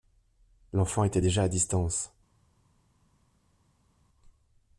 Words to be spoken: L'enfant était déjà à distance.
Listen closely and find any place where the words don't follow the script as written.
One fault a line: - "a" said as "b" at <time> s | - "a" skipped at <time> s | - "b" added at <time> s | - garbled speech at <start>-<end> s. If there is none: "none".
none